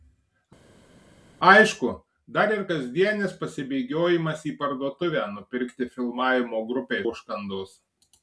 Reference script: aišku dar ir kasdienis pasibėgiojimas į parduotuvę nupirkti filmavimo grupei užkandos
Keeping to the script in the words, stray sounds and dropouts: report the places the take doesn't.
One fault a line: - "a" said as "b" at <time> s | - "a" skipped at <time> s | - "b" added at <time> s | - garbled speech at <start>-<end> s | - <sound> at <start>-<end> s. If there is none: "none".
none